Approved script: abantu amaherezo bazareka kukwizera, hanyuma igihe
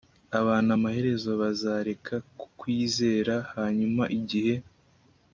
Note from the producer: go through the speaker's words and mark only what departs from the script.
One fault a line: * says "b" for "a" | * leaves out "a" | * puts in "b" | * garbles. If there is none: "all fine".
all fine